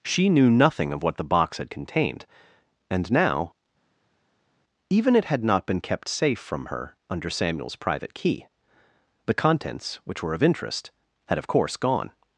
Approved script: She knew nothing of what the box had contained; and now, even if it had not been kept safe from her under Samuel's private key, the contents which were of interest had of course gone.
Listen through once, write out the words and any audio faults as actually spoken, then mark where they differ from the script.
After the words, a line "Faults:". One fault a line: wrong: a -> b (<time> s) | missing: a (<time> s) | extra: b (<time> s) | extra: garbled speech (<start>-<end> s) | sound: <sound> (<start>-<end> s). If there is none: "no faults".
She knew nothing of what the box had contained; and now, even it had not been kept safe from her under Samuel's private key, the contents which were of interest had of course gone.
Faults:
missing: if (5.1 s)